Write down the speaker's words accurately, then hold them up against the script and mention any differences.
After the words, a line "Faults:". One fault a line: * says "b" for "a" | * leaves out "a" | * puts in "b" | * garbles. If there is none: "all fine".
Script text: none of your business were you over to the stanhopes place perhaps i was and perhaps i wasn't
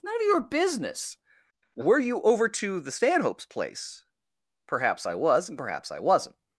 none of your business were you over to the stanhopes place perhaps i was and perhaps i wasn't
Faults:
all fine